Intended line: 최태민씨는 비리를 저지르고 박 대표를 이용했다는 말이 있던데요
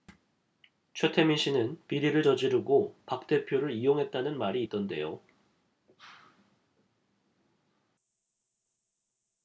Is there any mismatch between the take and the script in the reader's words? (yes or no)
no